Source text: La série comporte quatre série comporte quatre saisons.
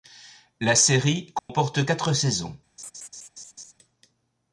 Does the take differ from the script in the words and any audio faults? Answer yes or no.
yes